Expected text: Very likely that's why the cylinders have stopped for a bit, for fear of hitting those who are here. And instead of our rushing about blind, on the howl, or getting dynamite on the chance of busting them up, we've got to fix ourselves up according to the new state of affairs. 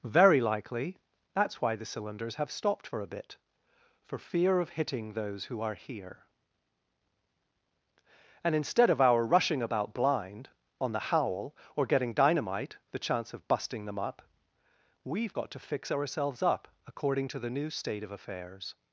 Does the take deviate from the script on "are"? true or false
false